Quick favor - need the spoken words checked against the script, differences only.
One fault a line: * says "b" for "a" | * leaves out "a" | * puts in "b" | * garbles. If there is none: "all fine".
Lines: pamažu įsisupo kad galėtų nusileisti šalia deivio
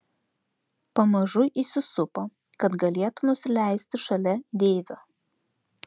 all fine